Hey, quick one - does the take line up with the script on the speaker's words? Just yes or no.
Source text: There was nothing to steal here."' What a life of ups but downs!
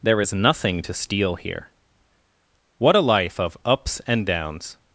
no